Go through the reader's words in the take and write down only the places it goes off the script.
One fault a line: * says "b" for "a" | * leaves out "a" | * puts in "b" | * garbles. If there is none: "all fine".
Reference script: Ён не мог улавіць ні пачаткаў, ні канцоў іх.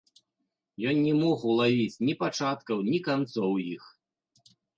all fine